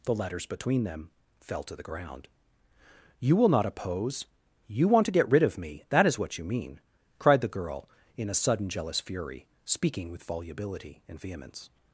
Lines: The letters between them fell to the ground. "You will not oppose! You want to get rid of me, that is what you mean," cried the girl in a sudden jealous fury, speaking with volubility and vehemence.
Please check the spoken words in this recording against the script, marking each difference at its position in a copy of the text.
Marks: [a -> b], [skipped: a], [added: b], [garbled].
The letters between them fell to the ground. "You will not oppose! You want to get rid of me, that is what you mean," cried the girl in a sudden jealous fury, speaking with volubility and vehemence.